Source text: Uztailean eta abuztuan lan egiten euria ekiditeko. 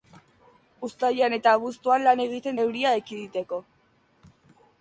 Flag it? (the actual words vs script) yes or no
no